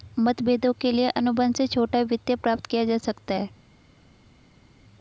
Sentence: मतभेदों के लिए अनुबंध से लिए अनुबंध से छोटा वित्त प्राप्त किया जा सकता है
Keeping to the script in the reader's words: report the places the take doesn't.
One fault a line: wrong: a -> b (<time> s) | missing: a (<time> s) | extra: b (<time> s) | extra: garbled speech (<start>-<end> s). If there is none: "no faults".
missing: लिए अनुबंध से (1.7 s)